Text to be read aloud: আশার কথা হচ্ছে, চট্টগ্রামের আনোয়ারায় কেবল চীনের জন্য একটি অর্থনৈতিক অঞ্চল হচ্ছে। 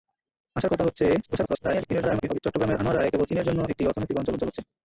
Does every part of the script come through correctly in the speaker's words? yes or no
no